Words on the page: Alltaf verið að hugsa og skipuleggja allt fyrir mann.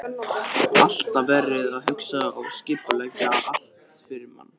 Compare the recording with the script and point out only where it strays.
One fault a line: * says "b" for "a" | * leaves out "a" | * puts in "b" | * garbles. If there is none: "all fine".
all fine